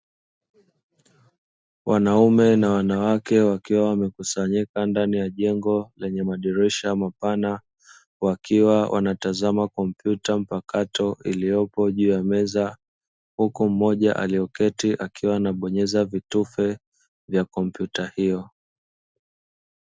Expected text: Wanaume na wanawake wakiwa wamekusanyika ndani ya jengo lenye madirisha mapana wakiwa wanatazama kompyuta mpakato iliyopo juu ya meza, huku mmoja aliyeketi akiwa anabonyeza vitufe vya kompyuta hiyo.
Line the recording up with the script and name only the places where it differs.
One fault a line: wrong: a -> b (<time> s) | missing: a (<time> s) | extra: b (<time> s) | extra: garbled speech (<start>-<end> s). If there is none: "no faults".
no faults